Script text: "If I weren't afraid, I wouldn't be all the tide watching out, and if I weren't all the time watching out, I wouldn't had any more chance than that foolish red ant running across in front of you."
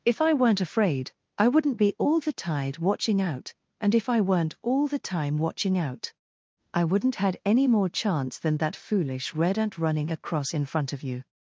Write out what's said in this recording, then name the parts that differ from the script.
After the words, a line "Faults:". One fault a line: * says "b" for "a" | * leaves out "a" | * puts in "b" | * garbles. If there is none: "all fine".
"If I weren't afraid, I wouldn't be all the tide watching out, and if I weren't all the time watching out, I wouldn't had any more chance than that foolish red ant running across in front of you."
Faults:
all fine